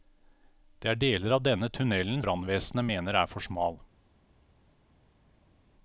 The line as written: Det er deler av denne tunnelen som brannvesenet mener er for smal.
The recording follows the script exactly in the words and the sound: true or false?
false